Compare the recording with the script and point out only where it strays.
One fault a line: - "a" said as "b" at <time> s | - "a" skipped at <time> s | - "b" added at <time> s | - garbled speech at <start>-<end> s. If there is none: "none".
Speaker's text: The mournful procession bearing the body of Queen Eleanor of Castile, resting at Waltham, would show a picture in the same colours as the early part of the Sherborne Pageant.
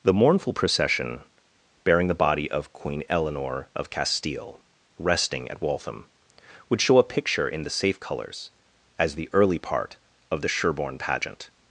- "same" said as "safe" at 7.7 s